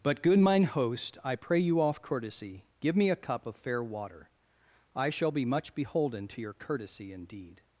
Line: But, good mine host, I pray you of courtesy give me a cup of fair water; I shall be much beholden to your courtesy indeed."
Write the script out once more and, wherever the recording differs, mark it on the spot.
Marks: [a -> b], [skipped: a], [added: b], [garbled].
But, good mine host, I pray you [of -> off] courtesy give me a cup of fair water; I shall be much beholden to your courtesy indeed."